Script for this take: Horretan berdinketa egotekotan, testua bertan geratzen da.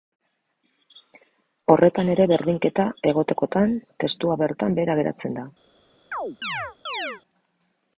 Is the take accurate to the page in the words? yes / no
no